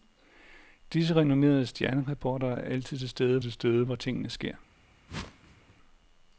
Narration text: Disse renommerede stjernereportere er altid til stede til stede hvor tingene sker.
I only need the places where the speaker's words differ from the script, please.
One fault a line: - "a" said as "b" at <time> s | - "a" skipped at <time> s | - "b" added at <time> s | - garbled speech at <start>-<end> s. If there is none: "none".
none